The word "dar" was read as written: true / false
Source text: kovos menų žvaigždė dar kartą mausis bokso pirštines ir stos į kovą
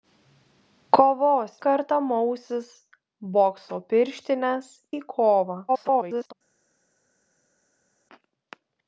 false